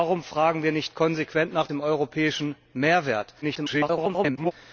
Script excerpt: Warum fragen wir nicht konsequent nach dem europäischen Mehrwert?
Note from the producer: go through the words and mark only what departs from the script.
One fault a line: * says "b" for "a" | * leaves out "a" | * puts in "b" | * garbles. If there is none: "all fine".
* garbles